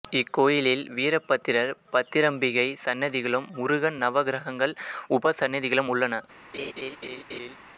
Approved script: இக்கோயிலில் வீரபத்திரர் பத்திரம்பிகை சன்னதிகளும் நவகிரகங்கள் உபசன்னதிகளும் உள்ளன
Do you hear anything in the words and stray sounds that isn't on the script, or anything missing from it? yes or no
yes